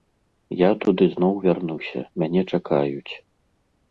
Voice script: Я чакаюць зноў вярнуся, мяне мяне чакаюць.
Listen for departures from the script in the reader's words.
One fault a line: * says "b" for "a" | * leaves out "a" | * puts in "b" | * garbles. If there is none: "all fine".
* says "туды" for "чакаюць"
* leaves out "мяне"